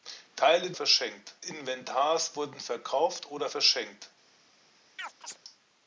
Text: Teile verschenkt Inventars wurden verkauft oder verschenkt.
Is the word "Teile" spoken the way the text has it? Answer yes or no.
yes